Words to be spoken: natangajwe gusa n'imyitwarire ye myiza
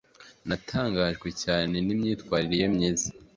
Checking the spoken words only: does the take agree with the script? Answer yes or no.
no